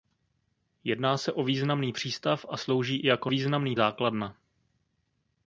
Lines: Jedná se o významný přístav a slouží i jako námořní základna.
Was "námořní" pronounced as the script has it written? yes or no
no